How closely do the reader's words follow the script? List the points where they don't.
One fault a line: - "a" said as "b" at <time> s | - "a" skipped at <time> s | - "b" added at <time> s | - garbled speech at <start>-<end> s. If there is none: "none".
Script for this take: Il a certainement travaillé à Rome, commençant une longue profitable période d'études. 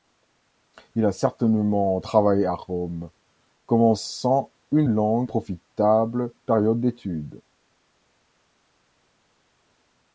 none